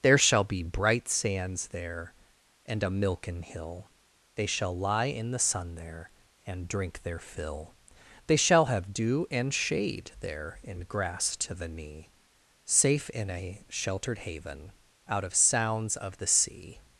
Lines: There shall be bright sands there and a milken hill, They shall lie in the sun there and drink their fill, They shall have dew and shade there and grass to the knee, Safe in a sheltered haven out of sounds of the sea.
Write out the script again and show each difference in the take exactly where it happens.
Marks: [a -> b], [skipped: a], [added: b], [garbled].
There shall be bright sands there and a milken hill, They shall lie in the sun there and drink their fill, They shall have dew and shade there and grass to the knee, Safe in a sheltered haven out of sounds of the sea.